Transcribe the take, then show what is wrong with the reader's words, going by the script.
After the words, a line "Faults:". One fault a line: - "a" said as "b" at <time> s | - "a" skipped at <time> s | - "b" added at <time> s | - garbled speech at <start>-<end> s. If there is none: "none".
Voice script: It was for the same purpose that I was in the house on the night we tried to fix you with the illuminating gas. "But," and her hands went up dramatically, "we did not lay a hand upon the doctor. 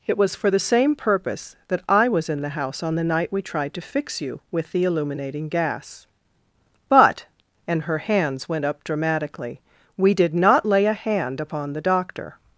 It was for the same purpose that I was in the house on the night we tried to fix you with the illuminating gas. "But," and her hands went up dramatically, "we did not lay a hand upon the doctor.
Faults:
none